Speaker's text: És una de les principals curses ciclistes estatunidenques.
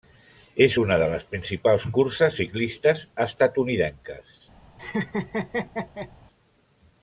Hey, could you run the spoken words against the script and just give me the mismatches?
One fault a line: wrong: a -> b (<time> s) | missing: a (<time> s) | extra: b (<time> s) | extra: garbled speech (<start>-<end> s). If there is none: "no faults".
no faults